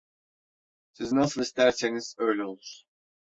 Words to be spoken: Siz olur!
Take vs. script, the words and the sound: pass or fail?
fail